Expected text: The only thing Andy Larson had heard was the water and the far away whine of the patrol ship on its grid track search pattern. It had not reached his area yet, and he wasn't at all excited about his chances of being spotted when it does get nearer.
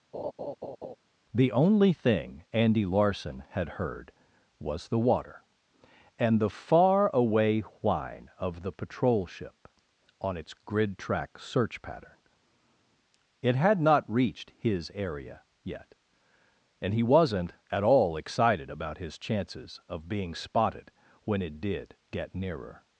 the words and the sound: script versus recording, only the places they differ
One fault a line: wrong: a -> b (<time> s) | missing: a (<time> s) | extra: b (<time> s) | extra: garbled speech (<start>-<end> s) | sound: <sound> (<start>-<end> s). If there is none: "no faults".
sound: laugh (0.1-1.0 s)
wrong: does -> did (21.6 s)